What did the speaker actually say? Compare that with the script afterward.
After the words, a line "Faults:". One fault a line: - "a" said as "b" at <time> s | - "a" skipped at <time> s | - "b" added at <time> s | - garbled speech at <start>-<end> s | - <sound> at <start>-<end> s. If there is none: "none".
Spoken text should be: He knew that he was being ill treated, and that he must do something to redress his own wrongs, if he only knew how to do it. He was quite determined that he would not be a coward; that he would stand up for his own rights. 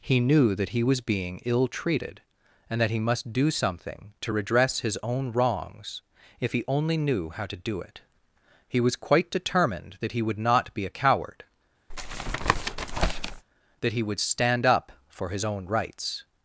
He knew that he was being ill treated, and that he must do something to redress his own wrongs, if he only knew how to do it. He was quite determined that he would not be a coward; that he would stand up for his own rights.
Faults:
- tap at 11.9-13.4 s